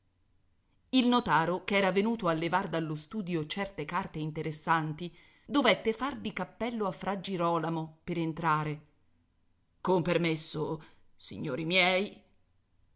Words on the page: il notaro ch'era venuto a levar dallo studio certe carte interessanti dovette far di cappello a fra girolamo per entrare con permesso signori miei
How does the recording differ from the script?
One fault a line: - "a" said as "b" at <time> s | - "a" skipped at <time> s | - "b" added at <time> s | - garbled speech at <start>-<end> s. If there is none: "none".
none